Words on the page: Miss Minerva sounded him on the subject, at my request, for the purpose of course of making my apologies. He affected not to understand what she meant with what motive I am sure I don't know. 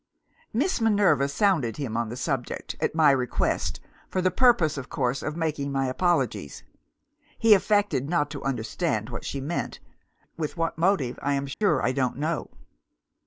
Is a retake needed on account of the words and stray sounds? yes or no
yes